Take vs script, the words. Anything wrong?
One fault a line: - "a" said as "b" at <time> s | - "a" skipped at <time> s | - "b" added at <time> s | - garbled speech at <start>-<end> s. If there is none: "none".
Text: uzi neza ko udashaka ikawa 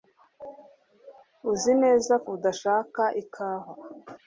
- "ko" skipped at 2.1 s